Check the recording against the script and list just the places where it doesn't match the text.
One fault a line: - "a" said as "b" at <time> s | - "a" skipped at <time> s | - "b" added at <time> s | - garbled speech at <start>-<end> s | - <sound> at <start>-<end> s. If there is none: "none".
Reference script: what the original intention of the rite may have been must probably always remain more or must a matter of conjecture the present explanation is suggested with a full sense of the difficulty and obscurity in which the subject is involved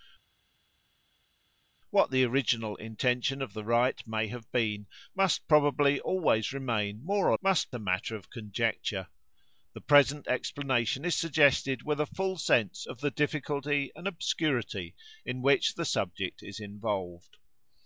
none